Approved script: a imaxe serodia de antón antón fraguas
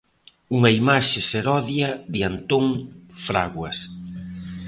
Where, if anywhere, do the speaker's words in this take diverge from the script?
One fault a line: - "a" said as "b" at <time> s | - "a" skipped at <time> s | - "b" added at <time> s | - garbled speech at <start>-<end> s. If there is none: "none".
- "a" said as "unha" at 0.6 s
- "antón" skipped at 2.6 s